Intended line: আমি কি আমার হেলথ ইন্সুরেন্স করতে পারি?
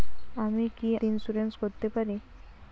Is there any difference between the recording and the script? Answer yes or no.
yes